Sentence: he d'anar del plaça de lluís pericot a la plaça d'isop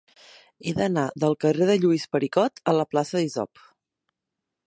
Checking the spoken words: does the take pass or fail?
fail